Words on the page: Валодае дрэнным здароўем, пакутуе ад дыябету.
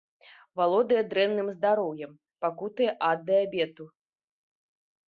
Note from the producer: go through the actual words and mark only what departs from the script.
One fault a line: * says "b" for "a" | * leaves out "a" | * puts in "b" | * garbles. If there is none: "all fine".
all fine